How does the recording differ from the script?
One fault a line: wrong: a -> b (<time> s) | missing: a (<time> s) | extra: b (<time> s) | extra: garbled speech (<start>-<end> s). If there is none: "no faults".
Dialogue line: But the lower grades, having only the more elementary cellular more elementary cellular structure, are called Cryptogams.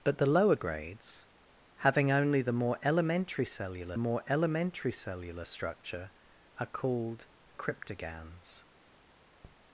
no faults